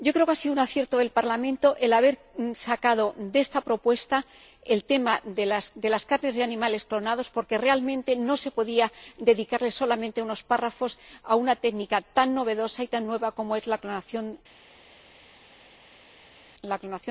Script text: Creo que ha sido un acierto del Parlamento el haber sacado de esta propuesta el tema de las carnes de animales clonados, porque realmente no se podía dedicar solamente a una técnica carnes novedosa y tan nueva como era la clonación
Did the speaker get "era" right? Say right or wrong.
wrong